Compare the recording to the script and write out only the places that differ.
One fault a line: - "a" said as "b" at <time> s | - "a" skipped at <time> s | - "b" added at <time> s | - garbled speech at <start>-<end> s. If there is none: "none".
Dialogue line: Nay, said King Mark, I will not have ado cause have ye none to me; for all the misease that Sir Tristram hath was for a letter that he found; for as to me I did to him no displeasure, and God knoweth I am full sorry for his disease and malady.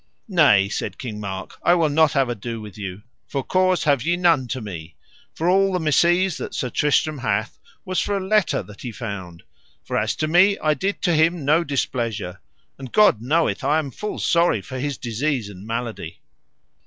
- "with you for" added at 2.6 s